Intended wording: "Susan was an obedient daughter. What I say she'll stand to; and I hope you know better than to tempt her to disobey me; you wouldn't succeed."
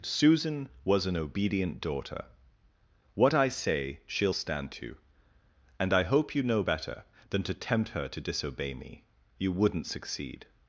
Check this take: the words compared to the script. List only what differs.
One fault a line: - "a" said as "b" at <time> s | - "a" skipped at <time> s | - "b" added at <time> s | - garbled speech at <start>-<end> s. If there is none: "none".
none